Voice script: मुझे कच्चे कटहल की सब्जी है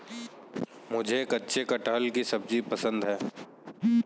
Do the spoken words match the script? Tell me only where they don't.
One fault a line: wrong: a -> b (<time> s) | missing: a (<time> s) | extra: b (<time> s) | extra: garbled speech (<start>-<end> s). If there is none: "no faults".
extra: पसंद (2.6 s)